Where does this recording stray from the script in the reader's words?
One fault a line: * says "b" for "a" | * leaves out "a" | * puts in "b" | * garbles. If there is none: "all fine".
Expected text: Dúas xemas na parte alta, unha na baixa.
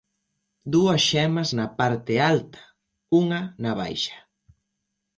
all fine